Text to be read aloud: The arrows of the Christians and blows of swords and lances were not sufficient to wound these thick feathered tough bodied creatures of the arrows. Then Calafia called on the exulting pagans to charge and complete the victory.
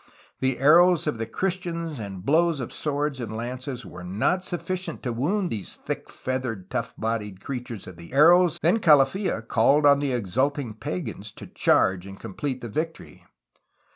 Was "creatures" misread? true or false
false